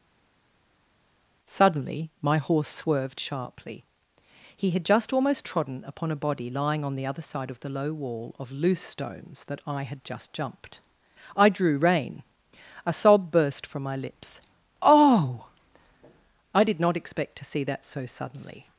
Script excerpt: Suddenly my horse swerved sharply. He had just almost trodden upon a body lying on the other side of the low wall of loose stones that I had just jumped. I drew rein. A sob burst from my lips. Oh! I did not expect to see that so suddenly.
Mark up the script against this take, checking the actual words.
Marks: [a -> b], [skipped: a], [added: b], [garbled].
Suddenly my horse swerved sharply. He had just almost trodden upon a body lying on the other side of the low wall of loose stones that I had just jumped. I drew rein. A sob burst from my lips. Oh! I did not expect to see that so suddenly.